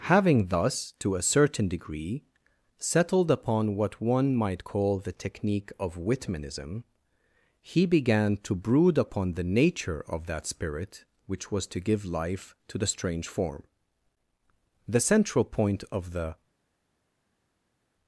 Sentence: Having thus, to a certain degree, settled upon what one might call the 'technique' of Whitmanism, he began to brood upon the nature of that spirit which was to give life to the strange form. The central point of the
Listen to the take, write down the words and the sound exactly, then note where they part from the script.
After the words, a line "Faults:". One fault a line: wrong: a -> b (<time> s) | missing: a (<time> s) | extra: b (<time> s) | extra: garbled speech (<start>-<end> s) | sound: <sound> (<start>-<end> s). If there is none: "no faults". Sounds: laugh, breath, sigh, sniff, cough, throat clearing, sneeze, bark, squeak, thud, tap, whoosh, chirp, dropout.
Having thus, to a certain degree, settled upon what one might call the 'technique' of Whitmanism, he began to brood upon the nature of that spirit which was to give life to the strange form. The central point of the
Faults:
no faults